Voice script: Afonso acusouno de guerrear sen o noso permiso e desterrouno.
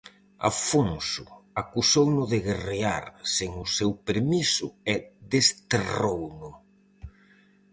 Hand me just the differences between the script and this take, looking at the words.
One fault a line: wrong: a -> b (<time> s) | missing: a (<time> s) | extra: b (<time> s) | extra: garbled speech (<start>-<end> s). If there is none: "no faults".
wrong: noso -> seu (3.8 s)